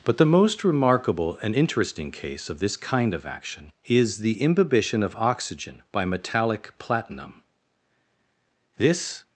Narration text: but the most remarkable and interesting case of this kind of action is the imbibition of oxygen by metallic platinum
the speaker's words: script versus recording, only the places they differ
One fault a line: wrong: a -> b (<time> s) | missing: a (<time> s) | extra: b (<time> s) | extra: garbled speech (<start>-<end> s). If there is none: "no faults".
extra: this (8.8 s)